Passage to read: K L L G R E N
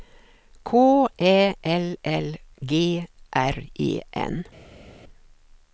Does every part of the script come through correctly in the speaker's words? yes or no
no